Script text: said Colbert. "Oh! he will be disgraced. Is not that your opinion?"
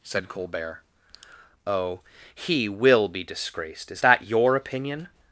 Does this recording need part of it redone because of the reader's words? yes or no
yes